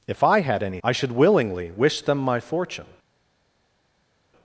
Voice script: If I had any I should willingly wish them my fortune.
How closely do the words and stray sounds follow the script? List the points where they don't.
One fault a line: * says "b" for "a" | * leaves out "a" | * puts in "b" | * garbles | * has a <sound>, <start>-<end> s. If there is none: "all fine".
all fine